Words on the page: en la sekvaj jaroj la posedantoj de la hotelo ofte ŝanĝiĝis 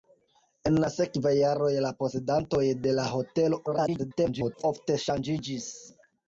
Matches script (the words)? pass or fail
fail